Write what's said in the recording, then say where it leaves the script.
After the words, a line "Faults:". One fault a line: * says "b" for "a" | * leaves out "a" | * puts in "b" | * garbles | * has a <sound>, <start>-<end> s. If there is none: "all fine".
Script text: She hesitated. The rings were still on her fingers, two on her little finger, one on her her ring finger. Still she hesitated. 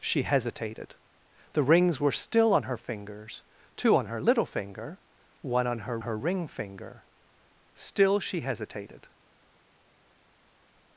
She hesitated. The rings were still on her fingers, two on her little finger, one on her her ring finger. Still she hesitated.
Faults:
all fine